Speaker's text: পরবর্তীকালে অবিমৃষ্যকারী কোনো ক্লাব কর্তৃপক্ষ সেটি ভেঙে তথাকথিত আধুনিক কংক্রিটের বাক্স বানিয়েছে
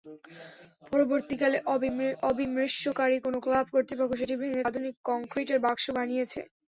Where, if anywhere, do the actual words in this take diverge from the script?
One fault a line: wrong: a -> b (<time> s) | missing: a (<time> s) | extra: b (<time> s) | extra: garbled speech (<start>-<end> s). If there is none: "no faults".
missing: তথাকথিত (4.7 s)